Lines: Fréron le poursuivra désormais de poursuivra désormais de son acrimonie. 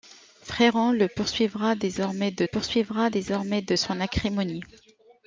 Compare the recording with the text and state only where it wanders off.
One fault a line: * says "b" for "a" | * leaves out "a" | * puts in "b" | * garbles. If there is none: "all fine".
all fine